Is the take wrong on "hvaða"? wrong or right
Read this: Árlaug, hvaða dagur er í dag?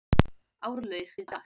wrong